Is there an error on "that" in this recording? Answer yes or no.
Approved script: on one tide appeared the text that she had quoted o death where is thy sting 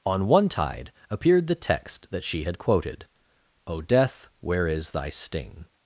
no